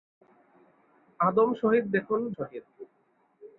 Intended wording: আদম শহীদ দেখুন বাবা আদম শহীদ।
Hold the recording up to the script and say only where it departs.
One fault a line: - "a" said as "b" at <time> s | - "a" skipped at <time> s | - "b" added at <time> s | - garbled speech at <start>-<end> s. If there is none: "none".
- "বাবা আদম" skipped at 2.2 s